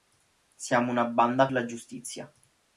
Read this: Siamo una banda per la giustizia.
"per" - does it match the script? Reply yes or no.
no